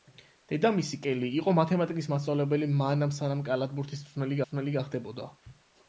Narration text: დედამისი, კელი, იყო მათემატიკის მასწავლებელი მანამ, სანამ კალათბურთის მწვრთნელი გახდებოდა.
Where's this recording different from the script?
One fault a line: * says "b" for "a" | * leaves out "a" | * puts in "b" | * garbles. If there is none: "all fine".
* puts in "მწვრთნელი"